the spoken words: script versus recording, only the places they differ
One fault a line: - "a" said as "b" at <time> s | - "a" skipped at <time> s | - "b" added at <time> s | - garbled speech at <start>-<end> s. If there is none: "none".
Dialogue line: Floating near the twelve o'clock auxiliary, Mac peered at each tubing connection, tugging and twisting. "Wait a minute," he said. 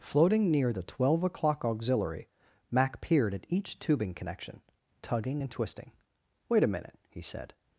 none